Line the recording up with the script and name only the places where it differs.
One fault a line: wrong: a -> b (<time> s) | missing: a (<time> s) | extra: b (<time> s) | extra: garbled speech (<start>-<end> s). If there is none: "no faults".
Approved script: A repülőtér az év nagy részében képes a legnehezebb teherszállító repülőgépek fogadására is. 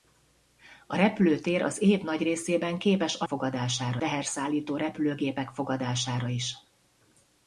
wrong: legnehezebb -> fogadására (3.2 s)